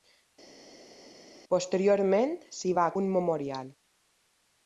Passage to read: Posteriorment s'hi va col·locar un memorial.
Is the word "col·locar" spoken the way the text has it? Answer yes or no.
no